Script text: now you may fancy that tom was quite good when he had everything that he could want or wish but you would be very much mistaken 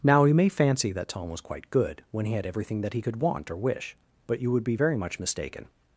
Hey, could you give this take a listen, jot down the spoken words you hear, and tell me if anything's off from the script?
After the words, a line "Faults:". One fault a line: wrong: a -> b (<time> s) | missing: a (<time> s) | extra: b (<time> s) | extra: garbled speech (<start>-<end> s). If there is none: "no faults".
now you may fancy that tom was quite good when he had everything that he could want or wish but you would be very much mistaken
Faults:
no faults